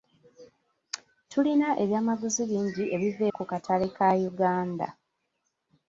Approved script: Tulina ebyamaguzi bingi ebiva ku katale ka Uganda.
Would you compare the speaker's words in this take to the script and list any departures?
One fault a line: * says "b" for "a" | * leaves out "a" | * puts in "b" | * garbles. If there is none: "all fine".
all fine